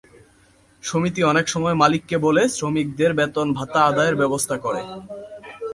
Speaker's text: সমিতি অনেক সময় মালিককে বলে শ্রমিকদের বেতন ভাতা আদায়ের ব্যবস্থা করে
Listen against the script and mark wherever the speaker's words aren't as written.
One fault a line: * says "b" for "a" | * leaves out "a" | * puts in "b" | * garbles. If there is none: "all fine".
all fine